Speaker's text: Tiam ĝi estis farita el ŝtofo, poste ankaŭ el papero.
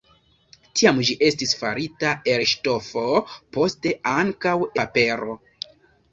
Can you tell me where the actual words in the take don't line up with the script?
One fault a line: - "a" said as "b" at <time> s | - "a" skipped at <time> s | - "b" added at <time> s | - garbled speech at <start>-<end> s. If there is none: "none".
- "el" skipped at 4.6 s